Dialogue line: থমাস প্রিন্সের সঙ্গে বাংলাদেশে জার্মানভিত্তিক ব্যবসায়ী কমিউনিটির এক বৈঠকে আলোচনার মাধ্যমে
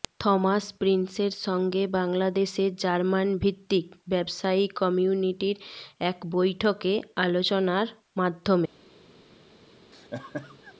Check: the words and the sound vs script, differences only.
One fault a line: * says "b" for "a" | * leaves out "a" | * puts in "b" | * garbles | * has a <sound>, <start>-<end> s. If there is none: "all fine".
* has a laugh, 9.9-10.7 s